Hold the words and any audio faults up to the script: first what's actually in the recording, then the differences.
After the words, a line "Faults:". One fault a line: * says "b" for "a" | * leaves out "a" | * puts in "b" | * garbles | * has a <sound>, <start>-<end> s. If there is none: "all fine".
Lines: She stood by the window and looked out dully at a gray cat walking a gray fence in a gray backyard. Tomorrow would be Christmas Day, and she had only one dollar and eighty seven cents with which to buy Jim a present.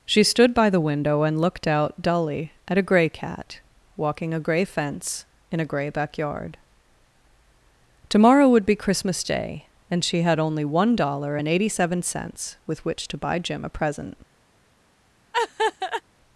She stood by the window and looked out dully at a gray cat walking a gray fence in a gray backyard. Tomorrow would be Christmas Day, and she had only one dollar and eighty seven cents with which to buy Jim a present.
Faults:
* has a laugh, 15.3-16.0 s